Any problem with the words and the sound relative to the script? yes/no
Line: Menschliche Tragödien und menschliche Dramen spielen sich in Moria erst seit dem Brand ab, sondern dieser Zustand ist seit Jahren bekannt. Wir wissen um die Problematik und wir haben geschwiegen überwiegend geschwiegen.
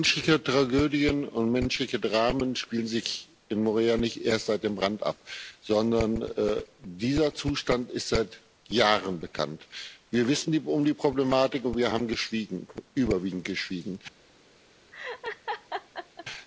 yes